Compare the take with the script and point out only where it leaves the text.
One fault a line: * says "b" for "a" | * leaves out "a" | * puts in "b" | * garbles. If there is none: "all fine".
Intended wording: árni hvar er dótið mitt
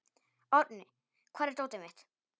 all fine